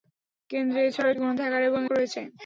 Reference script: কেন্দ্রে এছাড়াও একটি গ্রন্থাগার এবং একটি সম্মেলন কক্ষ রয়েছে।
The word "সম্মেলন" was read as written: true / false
false